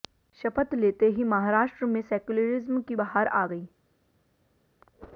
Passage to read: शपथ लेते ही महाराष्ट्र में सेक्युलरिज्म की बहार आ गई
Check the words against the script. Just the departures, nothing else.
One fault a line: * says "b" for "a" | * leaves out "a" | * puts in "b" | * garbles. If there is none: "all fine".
all fine